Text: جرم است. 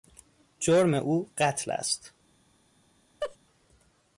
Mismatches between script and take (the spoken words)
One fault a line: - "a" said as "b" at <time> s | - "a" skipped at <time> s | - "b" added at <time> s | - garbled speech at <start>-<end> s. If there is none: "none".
- "او قتل" added at 0.9 s